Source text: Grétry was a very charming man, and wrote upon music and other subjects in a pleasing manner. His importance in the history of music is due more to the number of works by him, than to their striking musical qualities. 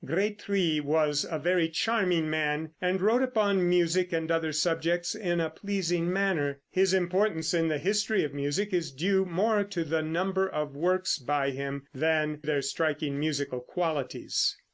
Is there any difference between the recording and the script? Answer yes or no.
yes